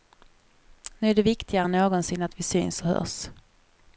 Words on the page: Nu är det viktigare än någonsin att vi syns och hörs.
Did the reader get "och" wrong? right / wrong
right